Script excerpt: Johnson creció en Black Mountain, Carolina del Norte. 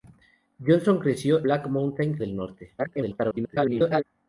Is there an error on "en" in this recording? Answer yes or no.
yes